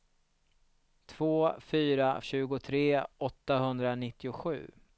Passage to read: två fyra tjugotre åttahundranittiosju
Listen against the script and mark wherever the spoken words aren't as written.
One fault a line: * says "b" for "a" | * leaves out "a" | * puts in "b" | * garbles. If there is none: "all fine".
all fine